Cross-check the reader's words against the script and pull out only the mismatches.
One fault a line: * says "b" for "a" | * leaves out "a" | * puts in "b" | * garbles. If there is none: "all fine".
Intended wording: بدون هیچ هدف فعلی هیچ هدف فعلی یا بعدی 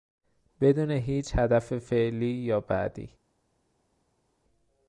* leaves out "هیچ هدف فعلی"